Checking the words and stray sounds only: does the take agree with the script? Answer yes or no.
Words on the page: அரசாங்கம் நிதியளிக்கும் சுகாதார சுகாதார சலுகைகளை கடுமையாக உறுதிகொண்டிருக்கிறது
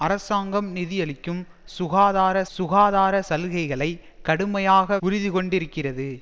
yes